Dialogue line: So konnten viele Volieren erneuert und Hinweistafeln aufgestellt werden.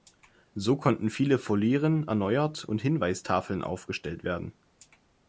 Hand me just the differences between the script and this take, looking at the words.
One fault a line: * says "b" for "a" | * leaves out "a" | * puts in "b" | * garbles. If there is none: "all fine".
all fine